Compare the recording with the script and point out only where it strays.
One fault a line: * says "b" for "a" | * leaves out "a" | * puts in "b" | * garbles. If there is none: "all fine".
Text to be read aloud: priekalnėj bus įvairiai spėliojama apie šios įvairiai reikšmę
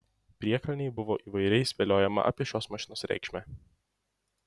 * says "buvo" for "bus"
* says "mašinos" for "įvairiai"